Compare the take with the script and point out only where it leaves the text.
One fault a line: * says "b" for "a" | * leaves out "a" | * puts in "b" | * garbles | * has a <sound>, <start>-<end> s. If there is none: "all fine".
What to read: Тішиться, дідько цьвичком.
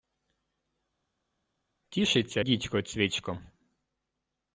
all fine